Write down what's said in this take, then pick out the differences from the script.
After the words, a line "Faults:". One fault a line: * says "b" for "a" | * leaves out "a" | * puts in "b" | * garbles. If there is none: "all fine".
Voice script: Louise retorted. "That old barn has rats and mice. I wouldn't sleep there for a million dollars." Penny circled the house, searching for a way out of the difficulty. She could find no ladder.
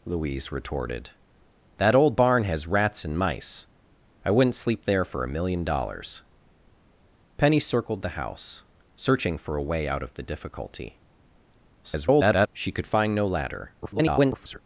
Louise retorted. "That old barn has rats and mice. I wouldn't sleep there for a million dollars." Penny circled the house, searching for a way out of the difficulty. [garbled] She could find no ladder. [garbled]
Faults:
* garbles
* garbles